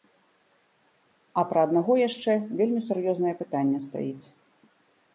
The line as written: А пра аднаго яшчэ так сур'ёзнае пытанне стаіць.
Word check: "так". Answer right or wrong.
wrong